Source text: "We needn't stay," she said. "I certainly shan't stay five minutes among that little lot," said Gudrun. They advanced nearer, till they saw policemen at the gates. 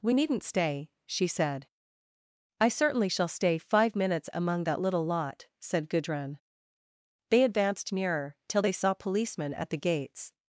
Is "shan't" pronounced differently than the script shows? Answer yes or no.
yes